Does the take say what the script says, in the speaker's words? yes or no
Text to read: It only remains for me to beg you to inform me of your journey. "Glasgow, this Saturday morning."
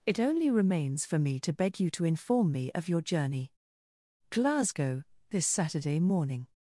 yes